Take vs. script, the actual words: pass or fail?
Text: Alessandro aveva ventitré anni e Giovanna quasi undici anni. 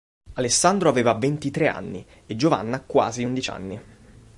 pass